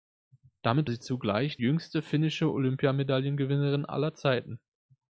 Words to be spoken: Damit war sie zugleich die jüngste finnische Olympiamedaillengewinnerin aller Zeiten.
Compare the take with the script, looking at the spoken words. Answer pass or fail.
fail